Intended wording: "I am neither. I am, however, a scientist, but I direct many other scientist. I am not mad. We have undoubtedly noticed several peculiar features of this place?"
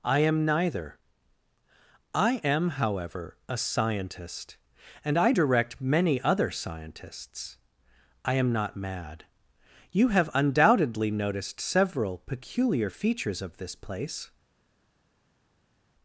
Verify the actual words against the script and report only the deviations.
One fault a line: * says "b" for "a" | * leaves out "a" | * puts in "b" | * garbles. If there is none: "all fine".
* says "and" for "but"
* says "scientists" for "scientist"
* says "You" for "We"